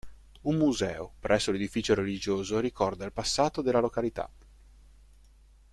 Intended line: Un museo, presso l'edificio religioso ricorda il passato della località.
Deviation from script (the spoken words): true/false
false